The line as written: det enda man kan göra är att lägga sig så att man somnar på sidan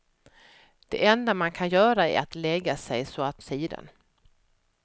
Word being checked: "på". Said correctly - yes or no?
no